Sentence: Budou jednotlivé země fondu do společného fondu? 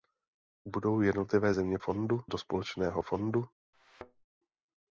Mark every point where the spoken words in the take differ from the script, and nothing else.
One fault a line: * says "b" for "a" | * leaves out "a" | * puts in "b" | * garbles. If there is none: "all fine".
all fine